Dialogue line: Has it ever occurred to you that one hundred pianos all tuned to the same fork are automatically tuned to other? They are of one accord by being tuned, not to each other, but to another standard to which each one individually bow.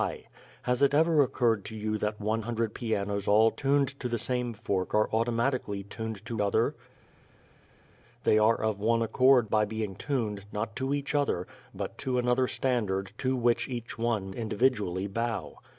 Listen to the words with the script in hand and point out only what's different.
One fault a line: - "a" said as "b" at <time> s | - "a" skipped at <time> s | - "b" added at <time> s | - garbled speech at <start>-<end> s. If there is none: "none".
none